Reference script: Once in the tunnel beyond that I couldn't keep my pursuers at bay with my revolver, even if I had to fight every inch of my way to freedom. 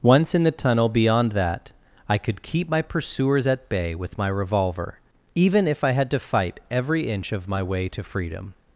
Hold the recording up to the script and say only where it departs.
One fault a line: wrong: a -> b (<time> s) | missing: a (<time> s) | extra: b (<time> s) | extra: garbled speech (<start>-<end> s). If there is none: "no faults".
wrong: couldn't -> could (2.2 s)